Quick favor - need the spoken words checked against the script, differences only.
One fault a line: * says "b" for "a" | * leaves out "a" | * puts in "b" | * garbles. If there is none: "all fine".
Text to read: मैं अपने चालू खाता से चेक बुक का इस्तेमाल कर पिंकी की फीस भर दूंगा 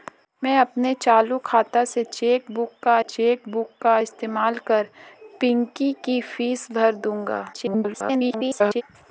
* puts in "चेक बुक का"
* garbles